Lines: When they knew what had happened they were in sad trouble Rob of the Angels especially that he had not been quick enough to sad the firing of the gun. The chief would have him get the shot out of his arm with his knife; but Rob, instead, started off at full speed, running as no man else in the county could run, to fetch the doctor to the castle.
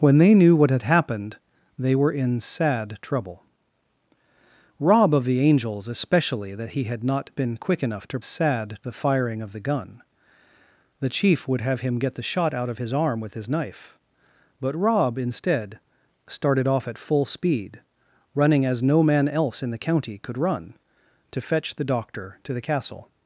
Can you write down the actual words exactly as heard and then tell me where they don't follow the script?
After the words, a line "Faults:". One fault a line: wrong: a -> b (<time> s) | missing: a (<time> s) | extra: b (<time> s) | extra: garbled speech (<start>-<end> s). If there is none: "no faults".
When they knew what had happened they were in sad trouble Rob of the Angels especially that he had not been quick enough to sad the firing of the gun. The chief would have him get the shot out of his arm with his knife; but Rob, instead, started off at full speed, running as no man else in the county could run, to fetch the doctor to the castle.
Faults:
no faults